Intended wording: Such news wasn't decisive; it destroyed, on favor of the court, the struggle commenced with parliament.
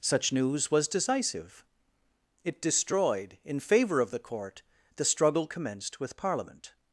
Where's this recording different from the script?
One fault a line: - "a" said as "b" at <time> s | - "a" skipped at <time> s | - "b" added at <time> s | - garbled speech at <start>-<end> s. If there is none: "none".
- "wasn't" said as "was" at 0.7 s
- "on" said as "in" at 3.4 s